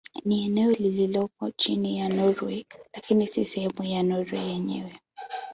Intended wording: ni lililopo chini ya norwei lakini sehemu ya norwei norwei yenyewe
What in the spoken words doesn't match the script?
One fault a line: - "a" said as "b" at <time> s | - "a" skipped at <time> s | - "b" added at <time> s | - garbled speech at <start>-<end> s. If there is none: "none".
- "eneo" added at 0.5 s
- "si" added at 3.3 s
- "norwei" skipped at 4.5 s